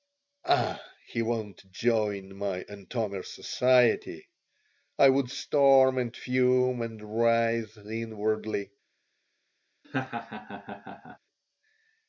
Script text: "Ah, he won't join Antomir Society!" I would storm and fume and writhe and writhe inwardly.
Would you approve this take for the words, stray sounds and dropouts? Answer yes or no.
no